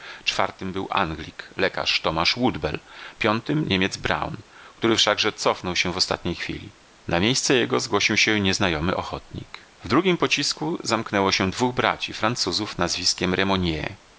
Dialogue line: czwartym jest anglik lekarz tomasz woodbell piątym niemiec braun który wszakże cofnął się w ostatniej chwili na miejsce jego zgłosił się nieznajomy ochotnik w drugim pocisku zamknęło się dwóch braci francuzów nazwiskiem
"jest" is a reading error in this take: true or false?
true